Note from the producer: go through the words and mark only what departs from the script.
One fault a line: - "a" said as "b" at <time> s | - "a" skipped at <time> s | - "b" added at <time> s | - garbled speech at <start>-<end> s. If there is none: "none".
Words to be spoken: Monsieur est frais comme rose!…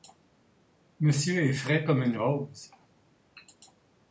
- "une" added at 2.0 s